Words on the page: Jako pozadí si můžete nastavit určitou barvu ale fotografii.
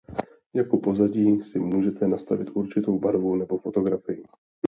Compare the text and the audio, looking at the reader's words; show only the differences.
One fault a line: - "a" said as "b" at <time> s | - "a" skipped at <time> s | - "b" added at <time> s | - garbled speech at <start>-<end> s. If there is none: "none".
- "ale" said as "nebo" at 3.4 s